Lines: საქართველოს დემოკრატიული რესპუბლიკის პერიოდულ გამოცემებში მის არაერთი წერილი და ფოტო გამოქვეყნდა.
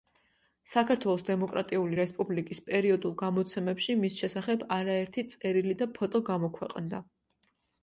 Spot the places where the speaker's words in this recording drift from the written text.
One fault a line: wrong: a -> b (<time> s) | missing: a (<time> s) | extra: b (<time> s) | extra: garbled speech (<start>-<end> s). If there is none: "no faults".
extra: შესახებ (4.2 s)